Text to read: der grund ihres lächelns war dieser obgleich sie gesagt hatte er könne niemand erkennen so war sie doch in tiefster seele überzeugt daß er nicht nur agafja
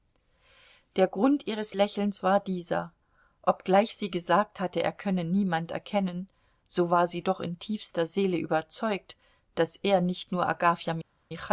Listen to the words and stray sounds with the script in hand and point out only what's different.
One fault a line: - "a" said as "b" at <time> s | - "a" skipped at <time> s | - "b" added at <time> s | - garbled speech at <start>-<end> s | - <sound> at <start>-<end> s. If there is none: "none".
none